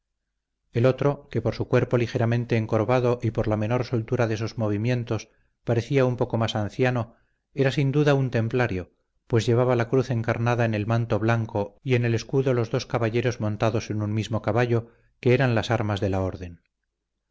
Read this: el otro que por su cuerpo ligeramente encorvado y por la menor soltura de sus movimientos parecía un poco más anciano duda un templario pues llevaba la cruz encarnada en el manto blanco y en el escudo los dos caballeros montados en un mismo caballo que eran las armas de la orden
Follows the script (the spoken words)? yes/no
no